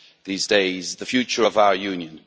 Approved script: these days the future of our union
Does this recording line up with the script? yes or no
yes